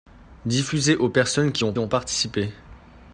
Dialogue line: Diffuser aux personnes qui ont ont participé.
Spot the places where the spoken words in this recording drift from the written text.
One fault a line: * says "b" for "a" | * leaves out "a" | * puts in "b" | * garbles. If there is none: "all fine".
all fine